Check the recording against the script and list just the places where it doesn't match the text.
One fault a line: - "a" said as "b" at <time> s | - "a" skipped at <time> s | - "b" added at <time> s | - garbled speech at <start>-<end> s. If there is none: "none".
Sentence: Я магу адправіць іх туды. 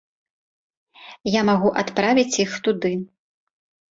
none